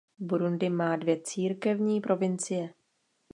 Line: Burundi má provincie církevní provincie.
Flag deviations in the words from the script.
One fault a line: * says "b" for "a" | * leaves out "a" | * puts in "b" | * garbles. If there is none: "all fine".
* says "dvě" for "provincie"